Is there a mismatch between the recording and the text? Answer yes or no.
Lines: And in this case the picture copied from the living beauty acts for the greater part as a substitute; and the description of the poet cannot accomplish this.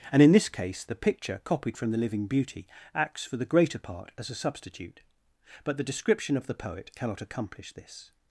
yes